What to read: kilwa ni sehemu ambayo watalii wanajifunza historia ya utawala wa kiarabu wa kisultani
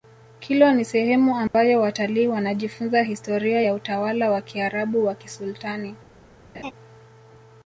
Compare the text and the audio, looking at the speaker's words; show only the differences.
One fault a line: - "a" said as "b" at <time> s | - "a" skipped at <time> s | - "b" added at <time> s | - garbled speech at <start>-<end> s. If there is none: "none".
none